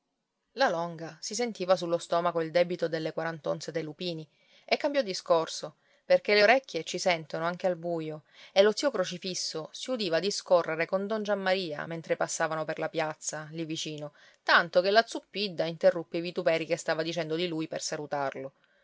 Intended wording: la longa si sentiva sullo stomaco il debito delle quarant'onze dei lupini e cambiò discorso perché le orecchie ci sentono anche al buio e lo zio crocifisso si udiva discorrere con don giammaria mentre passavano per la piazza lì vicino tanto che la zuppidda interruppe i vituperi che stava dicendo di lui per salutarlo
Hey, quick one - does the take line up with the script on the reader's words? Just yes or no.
yes